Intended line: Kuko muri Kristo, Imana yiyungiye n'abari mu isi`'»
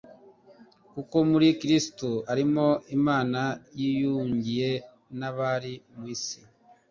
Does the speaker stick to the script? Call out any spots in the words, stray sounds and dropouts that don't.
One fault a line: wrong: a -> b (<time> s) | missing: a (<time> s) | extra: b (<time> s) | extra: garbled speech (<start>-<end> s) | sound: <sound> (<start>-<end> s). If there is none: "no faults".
extra: arimo (2.3 s)